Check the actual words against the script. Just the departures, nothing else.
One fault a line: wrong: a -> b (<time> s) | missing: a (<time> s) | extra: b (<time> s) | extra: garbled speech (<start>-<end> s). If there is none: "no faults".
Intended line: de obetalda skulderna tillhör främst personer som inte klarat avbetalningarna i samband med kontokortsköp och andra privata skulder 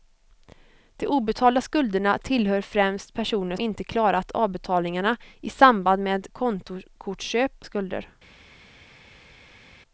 missing: som (3.5 s)
missing: och andra privata (7.6 s)